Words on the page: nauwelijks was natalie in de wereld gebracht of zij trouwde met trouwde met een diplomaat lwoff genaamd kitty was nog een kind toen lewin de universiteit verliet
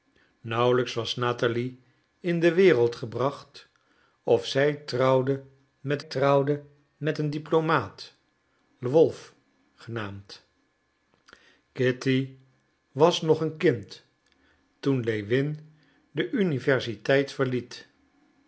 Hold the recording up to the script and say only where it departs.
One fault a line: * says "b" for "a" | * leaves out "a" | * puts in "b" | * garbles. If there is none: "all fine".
all fine